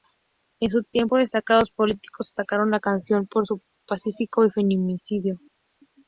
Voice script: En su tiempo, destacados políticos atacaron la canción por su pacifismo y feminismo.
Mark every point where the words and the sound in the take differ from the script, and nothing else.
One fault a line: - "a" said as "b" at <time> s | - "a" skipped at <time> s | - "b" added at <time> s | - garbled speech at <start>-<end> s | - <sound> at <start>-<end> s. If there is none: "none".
none